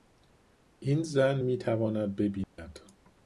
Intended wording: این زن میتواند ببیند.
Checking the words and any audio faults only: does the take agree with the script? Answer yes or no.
no